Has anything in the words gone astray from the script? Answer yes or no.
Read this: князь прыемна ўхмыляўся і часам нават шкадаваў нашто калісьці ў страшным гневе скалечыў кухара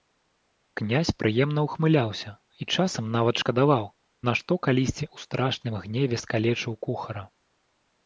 no